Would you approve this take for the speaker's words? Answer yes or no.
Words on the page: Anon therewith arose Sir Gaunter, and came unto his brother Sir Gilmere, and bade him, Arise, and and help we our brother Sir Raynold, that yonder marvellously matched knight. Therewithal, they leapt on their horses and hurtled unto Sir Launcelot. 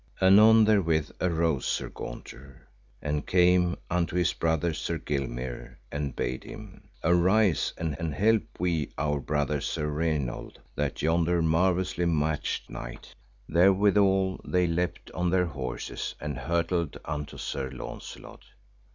yes